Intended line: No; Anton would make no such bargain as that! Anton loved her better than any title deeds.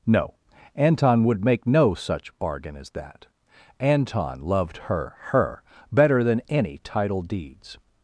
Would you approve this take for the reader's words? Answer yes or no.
no